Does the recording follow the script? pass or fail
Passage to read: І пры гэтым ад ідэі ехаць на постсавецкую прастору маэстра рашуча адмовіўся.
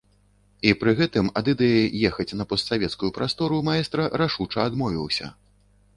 pass